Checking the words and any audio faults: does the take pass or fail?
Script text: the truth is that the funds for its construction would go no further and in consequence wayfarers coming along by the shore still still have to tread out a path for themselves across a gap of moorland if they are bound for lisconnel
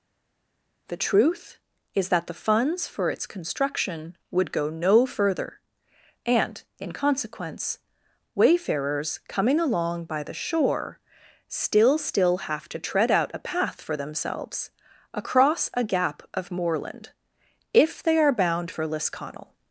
pass